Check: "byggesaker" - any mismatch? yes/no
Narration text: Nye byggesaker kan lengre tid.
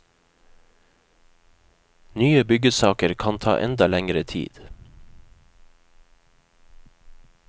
no